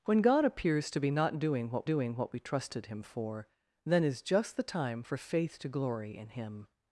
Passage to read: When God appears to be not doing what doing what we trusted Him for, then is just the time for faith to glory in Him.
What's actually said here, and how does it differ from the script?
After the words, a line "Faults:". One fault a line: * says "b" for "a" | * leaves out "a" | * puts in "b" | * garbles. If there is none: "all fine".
When God appears to be not doing what doing what we trusted Him for, then is just the time for faith to glory in Him.
Faults:
all fine